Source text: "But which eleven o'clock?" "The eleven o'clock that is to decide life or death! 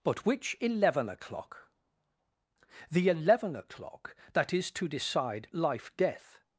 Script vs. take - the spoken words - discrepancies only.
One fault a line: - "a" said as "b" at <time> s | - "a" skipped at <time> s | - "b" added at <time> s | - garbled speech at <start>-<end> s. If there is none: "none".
- "or" skipped at 6.0 s